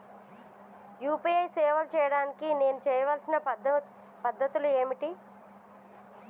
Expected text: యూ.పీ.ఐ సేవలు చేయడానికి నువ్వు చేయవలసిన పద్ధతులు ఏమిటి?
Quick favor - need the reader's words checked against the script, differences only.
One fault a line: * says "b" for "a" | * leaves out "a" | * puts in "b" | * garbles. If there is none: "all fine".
* says "నేను" for "నువ్వు"